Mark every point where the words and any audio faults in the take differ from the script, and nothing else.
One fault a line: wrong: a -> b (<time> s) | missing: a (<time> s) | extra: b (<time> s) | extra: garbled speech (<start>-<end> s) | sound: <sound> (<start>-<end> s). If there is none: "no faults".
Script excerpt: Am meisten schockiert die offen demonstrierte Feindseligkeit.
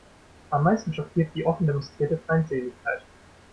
no faults